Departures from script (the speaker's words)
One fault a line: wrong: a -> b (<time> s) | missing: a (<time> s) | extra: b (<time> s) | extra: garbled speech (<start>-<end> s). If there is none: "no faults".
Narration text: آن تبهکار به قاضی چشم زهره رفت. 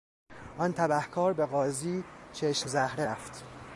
no faults